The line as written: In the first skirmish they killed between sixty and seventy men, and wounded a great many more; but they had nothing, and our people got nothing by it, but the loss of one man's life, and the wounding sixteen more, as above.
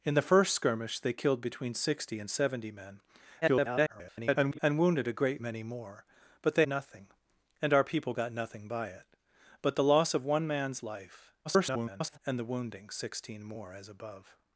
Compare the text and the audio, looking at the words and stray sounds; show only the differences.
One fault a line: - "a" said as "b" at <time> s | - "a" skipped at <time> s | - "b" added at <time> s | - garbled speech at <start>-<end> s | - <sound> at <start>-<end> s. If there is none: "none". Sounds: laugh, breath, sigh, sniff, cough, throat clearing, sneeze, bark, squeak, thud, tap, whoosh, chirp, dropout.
- garbled speech at 3.4-4.6 s
- "had" skipped at 6.7 s
- garbled speech at 11.4-12.2 s